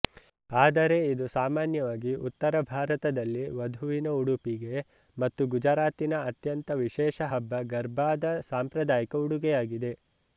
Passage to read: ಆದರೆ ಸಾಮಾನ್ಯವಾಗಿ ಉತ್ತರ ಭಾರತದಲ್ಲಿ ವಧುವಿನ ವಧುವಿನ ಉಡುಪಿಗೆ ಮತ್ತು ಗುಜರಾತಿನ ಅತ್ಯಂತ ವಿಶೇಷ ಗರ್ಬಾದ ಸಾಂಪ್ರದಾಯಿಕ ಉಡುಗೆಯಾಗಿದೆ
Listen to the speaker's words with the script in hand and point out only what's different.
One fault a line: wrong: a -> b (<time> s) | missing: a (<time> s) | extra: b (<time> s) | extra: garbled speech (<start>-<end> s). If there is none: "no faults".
extra: ಇದು (1.1 s)
missing: ವಧುವಿನ (4.1 s)
extra: ಹಬ್ಬ (7.3 s)